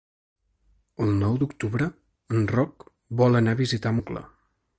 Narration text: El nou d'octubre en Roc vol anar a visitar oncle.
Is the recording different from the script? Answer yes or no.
no